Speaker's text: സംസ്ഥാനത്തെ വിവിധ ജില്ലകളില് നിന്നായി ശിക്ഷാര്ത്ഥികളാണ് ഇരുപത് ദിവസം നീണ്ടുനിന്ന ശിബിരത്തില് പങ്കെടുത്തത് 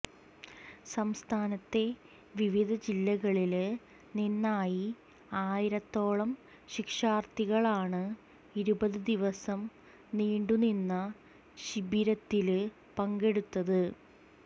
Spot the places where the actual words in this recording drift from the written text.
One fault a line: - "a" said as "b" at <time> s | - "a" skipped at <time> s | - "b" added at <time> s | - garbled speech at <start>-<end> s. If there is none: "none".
- "ആയിരത്തോളം" added at 5.4 s